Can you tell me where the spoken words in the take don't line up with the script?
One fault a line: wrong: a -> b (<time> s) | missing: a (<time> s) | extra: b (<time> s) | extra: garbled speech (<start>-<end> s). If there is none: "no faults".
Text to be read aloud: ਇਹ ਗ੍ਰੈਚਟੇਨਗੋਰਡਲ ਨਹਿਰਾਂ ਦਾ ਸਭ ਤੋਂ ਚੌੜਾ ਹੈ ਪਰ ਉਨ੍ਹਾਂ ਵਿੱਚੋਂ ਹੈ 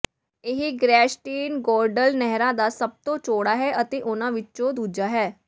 wrong: ਪਰ -> ਅਤੇ (3.8 s)
extra: ਦੂਜਾ (4.7 s)